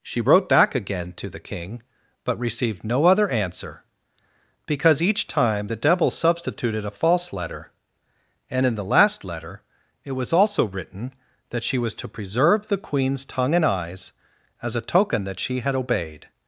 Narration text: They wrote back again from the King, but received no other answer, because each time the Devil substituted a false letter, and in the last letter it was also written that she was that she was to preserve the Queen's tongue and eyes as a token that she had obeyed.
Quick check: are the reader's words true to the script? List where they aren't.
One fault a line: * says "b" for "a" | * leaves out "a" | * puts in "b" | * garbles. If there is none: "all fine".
* says "She" for "They"
* says "to" for "from"
* leaves out "that she was"